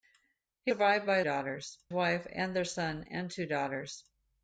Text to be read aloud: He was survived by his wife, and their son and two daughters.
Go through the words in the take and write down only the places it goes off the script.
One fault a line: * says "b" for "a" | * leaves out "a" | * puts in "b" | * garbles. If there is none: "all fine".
* leaves out "was"
* says "daughters" for "his"